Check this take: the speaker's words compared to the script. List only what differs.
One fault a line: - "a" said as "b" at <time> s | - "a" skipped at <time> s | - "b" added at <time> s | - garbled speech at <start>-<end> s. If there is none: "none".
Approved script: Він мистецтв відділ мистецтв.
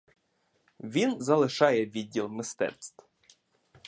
- "мистецтв" said as "залишає" at 1.2 s